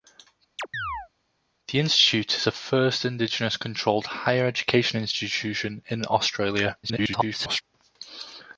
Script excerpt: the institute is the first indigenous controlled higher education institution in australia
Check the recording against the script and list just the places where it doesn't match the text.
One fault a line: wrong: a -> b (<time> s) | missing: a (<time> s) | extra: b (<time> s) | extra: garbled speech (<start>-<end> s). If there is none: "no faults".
extra: garbled speech (6.8-7.6 s)